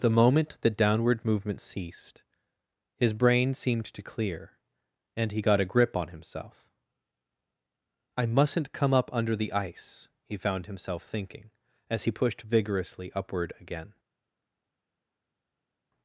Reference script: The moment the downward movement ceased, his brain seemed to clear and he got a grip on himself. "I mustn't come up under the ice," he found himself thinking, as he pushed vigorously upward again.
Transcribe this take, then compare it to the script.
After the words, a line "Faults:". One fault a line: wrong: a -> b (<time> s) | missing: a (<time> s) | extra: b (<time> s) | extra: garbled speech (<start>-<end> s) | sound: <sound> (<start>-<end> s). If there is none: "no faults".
The moment the downward movement ceased, his brain seemed to clear and he got a grip on himself. "I mustn't come up under the ice," he found himself thinking, as he pushed vigorously upward again.
Faults:
no faults